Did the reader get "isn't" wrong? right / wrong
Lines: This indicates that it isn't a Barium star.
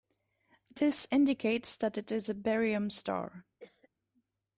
wrong